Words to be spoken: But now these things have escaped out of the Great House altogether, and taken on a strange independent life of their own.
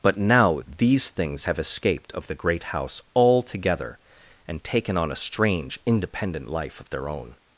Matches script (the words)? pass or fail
fail